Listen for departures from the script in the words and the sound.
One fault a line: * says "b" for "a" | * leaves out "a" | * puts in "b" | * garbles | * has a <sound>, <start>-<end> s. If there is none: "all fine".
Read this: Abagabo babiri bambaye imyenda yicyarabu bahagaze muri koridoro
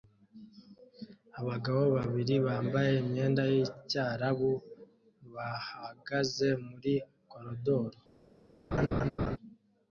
* has a laugh, 8.7-9.4 s